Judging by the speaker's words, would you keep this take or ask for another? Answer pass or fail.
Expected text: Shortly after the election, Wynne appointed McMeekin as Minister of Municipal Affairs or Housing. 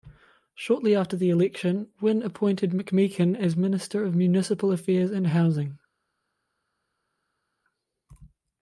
fail